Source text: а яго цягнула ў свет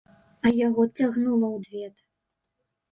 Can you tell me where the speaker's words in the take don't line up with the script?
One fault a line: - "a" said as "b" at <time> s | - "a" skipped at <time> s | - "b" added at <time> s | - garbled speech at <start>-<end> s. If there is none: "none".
none